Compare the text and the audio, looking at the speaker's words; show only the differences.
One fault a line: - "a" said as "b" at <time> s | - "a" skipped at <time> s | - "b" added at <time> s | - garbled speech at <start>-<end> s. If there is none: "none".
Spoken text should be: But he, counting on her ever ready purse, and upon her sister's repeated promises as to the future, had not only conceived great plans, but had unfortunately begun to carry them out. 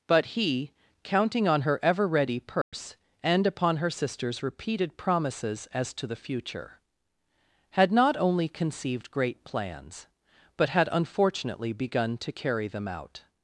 none